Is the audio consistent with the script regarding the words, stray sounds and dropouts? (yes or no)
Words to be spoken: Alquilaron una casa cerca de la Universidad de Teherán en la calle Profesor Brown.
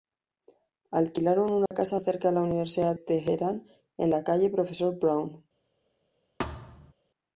no